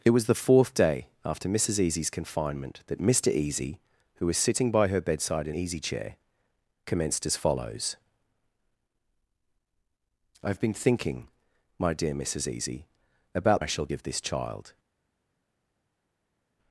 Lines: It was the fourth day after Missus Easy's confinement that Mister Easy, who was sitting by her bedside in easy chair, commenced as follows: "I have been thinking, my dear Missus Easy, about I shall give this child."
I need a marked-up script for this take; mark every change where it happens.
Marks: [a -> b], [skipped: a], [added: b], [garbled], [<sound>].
It was the fourth day after Missus Easy's confinement that Mister Easy, who was sitting by her bedside in easy chair, commenced as follows: "I have been thinking, my dear Missus Easy, about I shall give this child."